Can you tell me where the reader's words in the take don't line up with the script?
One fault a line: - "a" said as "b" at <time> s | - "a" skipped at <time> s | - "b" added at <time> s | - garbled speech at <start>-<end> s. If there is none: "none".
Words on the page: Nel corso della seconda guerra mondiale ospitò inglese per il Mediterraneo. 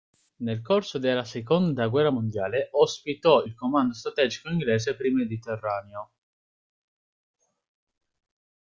- "il Comando strategico" added at 3.4 s